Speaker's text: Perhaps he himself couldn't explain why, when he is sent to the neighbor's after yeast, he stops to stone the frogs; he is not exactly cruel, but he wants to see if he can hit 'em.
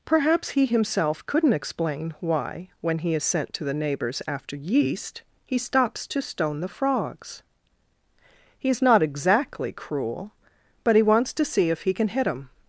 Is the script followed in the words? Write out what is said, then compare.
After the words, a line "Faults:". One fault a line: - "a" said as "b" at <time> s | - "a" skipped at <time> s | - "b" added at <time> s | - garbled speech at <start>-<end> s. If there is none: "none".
Perhaps he himself couldn't explain why, when he is sent to the neighbor's after yeast, he stops to stone the frogs; he is not exactly cruel, but he wants to see if he can hit 'em.
Faults:
none